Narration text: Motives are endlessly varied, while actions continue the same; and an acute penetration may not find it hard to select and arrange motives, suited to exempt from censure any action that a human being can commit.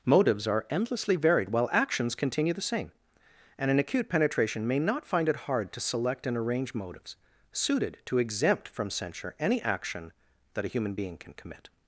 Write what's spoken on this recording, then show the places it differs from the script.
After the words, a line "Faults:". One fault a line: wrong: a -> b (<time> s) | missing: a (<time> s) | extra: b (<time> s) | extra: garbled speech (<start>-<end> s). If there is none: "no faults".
Motives are endlessly varied, while actions continue the same; and an acute penetration may not find it hard to select and arrange motives, suited to exempt from censure any action that a human being can commit.
Faults:
no faults